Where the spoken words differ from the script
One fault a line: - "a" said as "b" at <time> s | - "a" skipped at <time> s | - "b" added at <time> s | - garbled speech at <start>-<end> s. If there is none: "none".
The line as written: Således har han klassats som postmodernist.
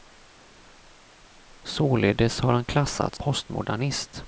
- "som" skipped at 3.2 s